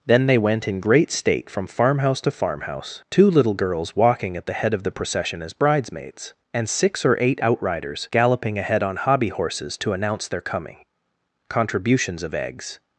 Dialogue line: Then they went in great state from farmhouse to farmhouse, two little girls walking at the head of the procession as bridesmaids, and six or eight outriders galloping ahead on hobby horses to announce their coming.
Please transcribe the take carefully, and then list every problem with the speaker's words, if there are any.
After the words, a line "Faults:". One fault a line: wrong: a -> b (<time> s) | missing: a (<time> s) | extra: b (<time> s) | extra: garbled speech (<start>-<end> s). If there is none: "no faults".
Then they went in great state from farmhouse to farmhouse, two little girls walking at the head of the procession as bridesmaids, and six or eight outriders galloping ahead on hobby horses to announce their coming. Contributions of eggs
Faults:
extra: Contributions of eggs (11.5 s)